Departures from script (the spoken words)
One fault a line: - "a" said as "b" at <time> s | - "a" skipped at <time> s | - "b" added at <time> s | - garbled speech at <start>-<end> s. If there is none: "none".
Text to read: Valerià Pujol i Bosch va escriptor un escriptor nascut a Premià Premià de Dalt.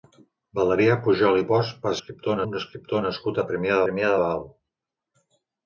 none